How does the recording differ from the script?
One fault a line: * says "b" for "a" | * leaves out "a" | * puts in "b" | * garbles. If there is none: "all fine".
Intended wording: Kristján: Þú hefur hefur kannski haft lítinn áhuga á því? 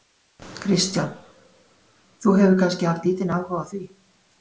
* leaves out "hefur"